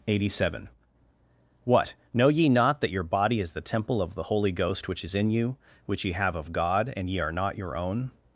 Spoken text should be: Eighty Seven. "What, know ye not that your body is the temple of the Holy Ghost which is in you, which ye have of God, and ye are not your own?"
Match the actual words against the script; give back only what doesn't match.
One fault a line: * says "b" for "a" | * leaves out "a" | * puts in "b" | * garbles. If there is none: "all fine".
all fine